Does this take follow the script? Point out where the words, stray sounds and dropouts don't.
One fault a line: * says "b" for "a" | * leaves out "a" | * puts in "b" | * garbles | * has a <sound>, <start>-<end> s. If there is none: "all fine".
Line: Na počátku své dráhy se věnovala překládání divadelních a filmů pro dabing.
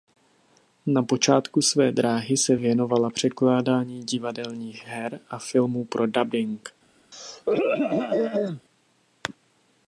* puts in "her"
* has a throat clearing, 7.1-8.6 s